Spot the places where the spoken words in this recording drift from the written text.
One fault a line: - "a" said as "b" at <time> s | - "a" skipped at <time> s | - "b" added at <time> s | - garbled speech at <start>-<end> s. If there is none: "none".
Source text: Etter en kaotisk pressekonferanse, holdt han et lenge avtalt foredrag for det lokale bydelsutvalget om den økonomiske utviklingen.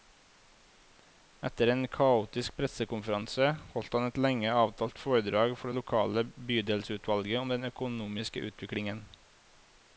none